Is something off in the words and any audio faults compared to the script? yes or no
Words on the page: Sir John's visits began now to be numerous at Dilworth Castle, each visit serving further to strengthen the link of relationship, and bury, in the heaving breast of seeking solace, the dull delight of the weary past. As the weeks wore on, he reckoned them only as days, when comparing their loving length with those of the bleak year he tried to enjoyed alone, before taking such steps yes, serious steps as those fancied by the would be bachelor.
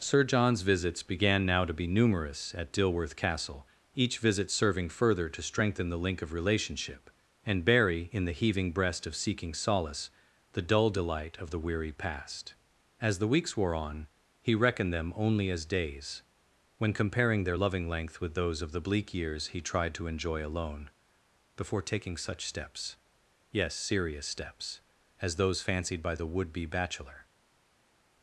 yes